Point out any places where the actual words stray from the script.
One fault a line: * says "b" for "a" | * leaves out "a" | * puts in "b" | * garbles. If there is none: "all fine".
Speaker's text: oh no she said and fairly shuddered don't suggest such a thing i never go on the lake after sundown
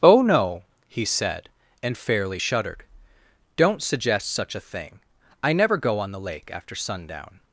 * says "he" for "she"